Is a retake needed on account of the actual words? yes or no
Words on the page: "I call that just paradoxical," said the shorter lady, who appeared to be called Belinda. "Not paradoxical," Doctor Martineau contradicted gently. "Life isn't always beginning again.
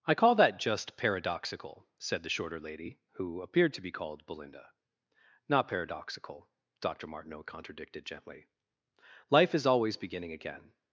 yes